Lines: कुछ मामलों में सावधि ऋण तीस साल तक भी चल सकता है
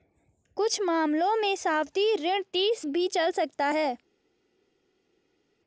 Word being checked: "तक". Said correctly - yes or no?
no